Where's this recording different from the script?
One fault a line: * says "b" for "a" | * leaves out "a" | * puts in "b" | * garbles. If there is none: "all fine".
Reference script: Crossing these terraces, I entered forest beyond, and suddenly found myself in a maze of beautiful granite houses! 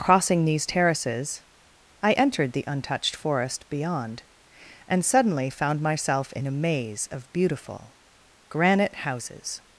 * puts in "the untouched"